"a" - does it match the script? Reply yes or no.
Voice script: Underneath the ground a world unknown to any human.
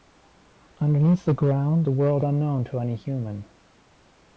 yes